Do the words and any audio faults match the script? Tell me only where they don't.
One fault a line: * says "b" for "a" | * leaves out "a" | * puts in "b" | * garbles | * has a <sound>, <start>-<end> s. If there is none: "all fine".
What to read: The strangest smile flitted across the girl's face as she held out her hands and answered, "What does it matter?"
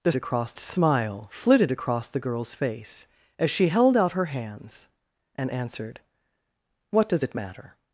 * says "across" for "strangest"